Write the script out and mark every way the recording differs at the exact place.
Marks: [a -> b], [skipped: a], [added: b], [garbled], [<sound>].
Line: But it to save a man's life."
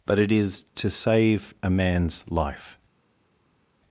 But it [added: is] to save a man's life."